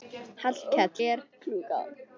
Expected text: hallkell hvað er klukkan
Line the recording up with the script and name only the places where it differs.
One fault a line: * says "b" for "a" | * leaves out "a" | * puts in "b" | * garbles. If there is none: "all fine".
* leaves out "hvað"